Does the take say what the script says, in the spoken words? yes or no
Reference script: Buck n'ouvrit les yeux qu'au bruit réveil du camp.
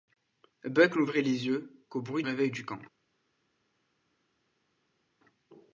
yes